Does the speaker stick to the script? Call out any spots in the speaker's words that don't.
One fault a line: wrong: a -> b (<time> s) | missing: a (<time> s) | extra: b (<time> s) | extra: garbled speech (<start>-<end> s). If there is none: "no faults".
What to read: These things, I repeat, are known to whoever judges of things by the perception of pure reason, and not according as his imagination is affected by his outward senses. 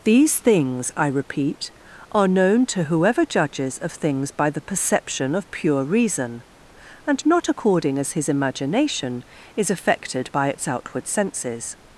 wrong: his -> its (10.5 s)